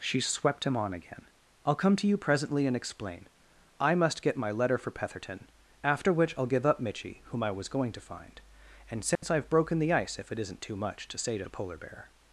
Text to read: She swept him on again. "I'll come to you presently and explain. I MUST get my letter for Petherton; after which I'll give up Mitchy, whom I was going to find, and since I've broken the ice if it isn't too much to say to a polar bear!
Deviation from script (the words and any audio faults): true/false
true